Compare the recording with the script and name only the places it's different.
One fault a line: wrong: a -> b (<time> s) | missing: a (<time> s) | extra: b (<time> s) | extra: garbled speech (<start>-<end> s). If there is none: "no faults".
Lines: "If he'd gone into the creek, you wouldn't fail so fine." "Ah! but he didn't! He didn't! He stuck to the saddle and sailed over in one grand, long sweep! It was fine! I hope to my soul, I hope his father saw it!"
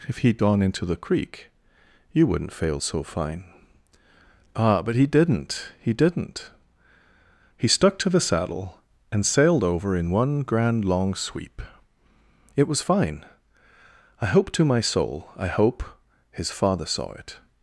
no faults